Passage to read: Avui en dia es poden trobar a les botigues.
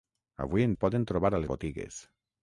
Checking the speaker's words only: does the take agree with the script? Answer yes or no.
no